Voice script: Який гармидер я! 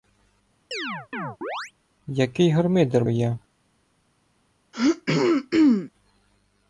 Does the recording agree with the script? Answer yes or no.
yes